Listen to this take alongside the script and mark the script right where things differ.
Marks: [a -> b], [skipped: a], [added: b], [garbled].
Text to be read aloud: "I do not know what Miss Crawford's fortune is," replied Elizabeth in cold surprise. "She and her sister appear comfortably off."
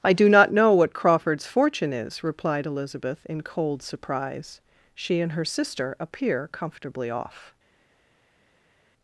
"I do not know what [skipped: Miss] Crawford's fortune is," replied Elizabeth in cold surprise. "She and her sister appear comfortably off."